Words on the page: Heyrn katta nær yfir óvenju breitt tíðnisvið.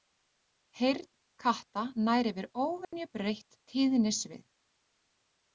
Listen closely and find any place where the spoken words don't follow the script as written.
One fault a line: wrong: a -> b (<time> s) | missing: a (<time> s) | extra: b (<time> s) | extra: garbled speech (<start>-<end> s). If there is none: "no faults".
no faults